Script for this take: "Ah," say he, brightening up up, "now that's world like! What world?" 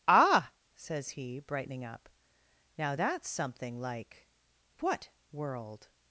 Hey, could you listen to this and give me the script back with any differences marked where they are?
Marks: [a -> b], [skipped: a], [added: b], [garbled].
"Ah," [say -> says] he, brightening up [skipped: up,] "now that's [world -> something] like! What world?"